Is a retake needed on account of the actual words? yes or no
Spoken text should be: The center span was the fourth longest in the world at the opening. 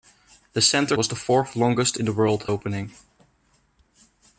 yes